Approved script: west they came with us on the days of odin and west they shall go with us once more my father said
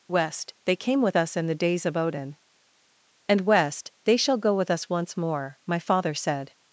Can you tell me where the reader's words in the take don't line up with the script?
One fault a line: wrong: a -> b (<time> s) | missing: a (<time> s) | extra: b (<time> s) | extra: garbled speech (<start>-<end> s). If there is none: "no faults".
wrong: on -> in (1.4 s)